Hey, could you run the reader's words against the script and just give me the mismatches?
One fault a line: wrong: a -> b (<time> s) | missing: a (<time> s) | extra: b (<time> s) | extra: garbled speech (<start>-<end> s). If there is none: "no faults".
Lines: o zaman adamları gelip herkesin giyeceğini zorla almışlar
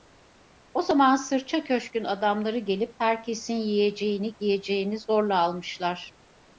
extra: sırça köşkün (1.1 s)
extra: yiyeceğini (3.5 s)